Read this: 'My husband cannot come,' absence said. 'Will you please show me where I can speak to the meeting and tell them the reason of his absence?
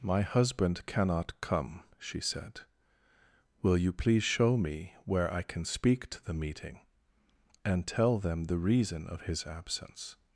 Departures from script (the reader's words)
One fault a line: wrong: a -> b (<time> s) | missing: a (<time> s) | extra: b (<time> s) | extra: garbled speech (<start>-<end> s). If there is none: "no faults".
wrong: absence -> she (2.0 s)